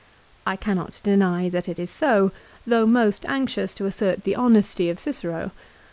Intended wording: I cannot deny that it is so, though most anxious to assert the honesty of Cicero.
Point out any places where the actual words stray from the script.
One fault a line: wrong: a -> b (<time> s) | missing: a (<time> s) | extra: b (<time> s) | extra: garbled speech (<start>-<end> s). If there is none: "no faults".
no faults